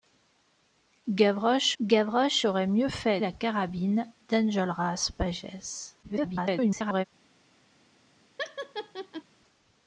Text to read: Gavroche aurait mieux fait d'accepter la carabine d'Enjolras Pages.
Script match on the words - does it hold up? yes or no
no